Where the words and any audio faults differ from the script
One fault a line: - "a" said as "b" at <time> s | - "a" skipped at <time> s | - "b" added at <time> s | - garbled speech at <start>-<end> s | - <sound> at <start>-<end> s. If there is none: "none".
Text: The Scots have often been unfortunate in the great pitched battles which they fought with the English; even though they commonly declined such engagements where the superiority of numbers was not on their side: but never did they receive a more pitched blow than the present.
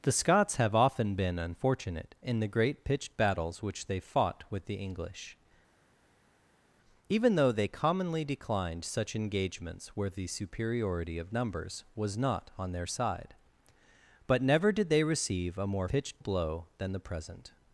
none